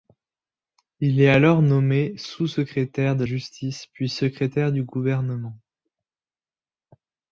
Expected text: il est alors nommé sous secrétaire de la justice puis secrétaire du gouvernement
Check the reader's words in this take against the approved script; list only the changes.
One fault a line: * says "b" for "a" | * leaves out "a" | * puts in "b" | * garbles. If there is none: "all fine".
* leaves out "la"